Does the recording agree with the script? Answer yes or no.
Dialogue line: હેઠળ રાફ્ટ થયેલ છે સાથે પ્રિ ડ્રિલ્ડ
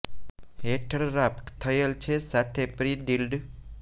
yes